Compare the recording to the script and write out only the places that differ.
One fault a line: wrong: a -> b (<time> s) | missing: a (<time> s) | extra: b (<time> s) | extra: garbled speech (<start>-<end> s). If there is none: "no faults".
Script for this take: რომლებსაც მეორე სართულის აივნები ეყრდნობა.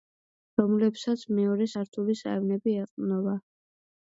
no faults